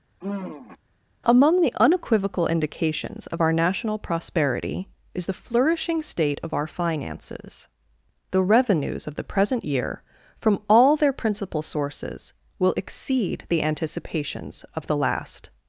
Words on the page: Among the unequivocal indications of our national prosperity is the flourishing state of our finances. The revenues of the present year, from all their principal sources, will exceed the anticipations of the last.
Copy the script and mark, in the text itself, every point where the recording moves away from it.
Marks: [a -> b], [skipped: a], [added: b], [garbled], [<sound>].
[sigh] Among the unequivocal indications of our national prosperity is the flourishing state of our finances. The revenues of the present year, from all their principal sources, will exceed the anticipations of the last.